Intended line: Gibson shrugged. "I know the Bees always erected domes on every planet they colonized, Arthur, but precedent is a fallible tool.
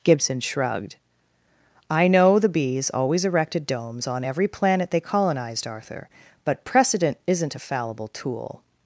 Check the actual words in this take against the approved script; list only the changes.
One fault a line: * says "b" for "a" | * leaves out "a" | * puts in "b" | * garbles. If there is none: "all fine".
* says "isn't" for "is"